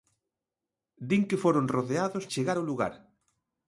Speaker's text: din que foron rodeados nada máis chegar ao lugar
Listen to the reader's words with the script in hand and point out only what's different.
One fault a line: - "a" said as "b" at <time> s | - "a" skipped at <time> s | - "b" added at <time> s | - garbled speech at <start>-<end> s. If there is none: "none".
- "nada máis" skipped at 2.2 s